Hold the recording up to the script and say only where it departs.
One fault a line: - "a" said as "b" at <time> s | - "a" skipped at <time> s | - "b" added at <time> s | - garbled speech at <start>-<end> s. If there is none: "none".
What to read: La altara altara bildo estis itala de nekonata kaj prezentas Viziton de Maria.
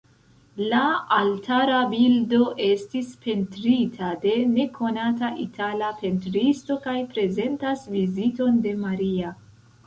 - "altara" skipped at 1.8 s
- "itala" said as "pentrita" at 3.2 s
- "itala pentristo" added at 5.5 s